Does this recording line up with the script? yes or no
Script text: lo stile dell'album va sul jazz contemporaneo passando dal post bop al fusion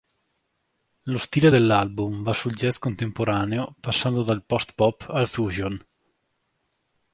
yes